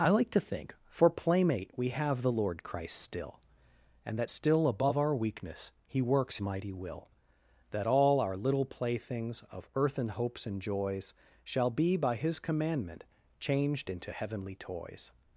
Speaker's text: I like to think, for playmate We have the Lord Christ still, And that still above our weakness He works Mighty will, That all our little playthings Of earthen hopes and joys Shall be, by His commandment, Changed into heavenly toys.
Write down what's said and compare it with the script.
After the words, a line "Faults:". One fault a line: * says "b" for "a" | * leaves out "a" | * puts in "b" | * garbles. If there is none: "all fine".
I like to think, for playmate We have the Lord Christ still, And that still above our weakness He works Mighty will, That all our little playthings Of earthen hopes and joys Shall be, by His commandment, Changed into heavenly toys.
Faults:
all fine